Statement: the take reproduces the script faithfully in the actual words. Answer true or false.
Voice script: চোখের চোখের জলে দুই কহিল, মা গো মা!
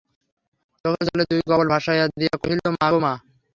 false